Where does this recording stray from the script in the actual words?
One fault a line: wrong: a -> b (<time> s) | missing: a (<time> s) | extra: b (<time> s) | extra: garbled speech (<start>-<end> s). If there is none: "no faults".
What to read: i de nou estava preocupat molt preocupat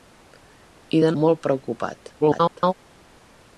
missing: nou estava preocupat (1.1 s)
extra: garbled speech (2.2-2.7 s)